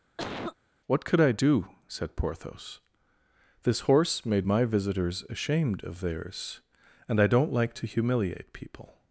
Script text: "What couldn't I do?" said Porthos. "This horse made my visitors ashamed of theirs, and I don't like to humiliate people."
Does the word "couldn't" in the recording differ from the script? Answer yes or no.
yes